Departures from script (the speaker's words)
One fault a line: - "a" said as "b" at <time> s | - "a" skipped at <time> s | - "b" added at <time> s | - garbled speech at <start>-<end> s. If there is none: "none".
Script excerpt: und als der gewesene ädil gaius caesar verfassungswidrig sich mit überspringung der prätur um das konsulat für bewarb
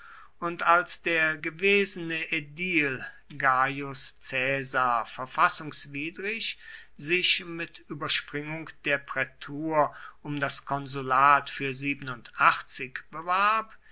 none